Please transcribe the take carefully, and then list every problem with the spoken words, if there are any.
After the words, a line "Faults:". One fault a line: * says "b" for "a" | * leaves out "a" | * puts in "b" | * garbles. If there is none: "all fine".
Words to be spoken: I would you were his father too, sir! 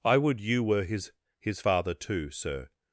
I would you were his his father too, sir!
Faults:
* puts in "his"